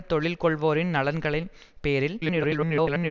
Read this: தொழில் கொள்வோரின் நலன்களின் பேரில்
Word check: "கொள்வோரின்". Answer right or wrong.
right